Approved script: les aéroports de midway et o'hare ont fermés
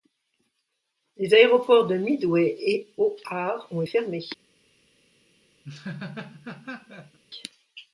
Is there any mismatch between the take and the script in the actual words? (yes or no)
no